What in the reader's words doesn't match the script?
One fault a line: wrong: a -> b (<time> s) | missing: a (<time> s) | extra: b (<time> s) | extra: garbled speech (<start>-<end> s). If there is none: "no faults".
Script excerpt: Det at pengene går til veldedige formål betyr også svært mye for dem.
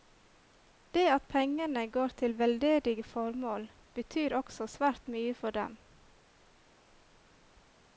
no faults